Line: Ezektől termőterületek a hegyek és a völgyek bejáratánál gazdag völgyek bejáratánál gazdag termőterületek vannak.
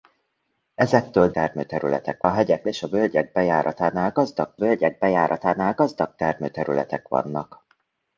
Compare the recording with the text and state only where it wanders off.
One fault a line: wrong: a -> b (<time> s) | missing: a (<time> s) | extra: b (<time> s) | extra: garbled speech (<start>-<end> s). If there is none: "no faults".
no faults